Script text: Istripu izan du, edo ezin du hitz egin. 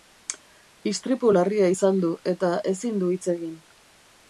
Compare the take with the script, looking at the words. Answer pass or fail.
fail